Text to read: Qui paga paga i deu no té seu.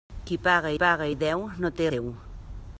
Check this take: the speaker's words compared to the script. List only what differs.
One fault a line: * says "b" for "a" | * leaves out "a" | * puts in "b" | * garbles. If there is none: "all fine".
all fine